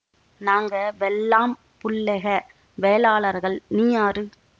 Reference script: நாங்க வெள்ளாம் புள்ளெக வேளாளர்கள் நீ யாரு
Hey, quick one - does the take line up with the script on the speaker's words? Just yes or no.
yes